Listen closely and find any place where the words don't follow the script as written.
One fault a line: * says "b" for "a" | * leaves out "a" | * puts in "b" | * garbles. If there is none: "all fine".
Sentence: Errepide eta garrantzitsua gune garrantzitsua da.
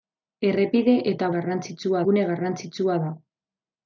all fine